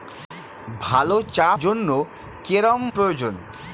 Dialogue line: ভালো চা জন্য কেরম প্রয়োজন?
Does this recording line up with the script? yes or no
yes